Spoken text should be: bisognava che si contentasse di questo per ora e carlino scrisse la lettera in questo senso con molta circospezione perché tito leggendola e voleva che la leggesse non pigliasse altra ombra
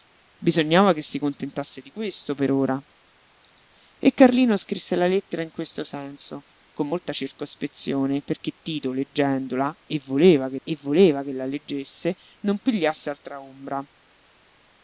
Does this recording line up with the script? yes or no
no